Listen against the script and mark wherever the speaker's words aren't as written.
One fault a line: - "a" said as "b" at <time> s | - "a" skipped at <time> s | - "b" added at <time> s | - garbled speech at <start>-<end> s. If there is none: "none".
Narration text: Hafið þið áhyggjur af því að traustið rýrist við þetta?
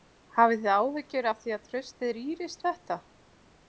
- "við" skipped at 2.6 s